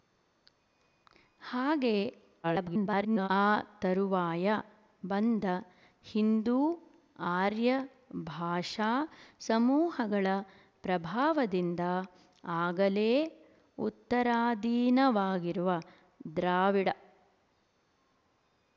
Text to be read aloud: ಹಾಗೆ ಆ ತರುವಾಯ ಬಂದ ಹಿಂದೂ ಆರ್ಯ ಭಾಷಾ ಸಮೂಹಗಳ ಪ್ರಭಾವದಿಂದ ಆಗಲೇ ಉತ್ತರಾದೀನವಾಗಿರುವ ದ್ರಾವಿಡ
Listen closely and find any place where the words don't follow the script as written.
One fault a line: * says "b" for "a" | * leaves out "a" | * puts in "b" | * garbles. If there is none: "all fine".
* garbles